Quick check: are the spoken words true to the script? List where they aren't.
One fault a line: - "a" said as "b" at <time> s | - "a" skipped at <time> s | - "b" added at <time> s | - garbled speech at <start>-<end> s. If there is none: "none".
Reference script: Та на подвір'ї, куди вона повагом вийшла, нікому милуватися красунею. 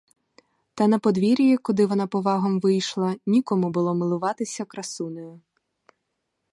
- "було" added at 3.7 s